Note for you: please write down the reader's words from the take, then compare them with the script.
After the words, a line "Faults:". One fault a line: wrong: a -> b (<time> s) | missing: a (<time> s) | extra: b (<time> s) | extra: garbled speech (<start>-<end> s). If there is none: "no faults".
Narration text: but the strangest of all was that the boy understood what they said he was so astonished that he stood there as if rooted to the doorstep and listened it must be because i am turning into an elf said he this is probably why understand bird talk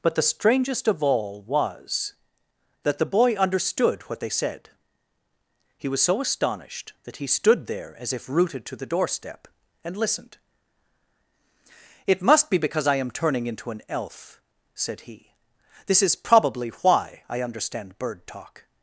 but the strangest of all was that the boy understood what they said he was so astonished that he stood there as if rooted to the doorstep and listened it must be because i am turning into an elf said he this is probably why i understand bird talk
Faults:
extra: i (17.3 s)